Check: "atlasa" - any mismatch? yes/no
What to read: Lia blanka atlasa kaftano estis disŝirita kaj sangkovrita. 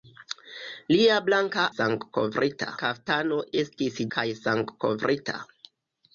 yes